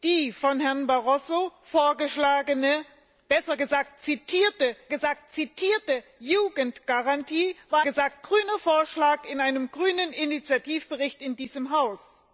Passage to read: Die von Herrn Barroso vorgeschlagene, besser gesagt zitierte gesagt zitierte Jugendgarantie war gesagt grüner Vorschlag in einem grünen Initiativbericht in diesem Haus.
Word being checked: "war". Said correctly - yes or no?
yes